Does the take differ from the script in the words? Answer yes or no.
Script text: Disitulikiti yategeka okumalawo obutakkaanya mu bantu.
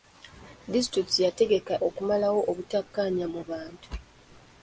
no